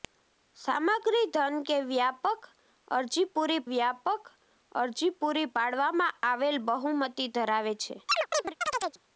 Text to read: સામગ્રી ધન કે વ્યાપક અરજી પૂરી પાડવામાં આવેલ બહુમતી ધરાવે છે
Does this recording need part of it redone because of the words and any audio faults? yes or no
yes